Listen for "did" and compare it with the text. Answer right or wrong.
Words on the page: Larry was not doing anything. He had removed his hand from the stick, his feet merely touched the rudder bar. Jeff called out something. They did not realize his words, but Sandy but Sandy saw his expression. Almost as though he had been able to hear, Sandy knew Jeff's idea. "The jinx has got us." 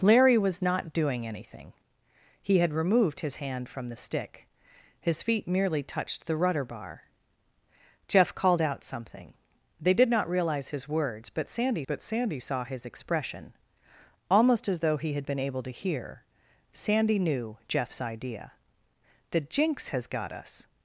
right